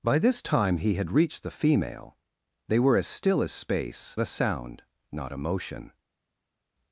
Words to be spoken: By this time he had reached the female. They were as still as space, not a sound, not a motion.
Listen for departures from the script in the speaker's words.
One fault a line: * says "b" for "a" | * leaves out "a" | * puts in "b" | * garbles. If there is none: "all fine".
* leaves out "not"